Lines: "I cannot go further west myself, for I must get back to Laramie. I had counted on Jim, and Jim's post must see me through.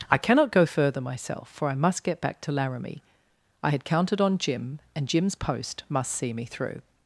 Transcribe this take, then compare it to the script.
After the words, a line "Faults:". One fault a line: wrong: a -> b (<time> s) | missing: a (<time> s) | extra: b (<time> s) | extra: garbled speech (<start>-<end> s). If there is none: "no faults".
"I cannot go further myself, for I must get back to Laramie. I had counted on Jim, and Jim's post must see me through.
Faults:
missing: west (1.0 s)